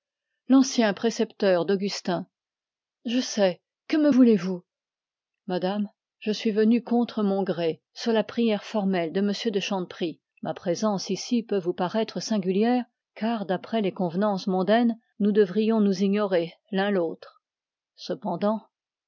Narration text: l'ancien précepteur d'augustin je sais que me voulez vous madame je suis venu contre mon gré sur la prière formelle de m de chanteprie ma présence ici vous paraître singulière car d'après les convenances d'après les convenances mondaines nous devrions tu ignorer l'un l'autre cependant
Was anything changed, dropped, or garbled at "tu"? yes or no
yes